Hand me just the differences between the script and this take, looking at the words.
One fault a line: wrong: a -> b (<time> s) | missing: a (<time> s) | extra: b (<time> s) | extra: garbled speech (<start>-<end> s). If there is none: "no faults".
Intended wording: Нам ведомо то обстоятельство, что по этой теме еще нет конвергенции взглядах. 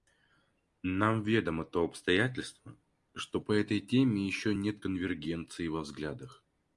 extra: во (5.7 s)